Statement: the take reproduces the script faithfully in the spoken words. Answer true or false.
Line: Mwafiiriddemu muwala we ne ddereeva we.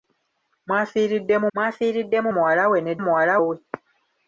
false